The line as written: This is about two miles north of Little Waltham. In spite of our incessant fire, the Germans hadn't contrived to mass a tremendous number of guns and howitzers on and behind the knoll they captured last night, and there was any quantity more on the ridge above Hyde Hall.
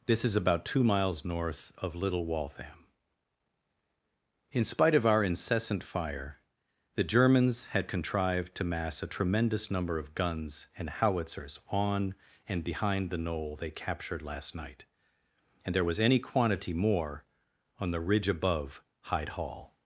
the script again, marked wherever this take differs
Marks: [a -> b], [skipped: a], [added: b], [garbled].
This is about two miles north of Little Waltham. In spite of our incessant fire, the Germans [hadn't -> had] contrived to mass a tremendous number of guns and howitzers on and behind the knoll they captured last night, and there was any quantity more on the ridge above Hyde Hall.